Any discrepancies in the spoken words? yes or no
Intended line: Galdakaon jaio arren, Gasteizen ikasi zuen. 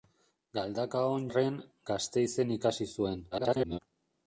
yes